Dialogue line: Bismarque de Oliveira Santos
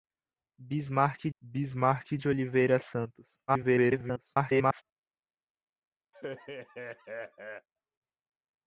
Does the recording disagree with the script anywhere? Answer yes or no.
yes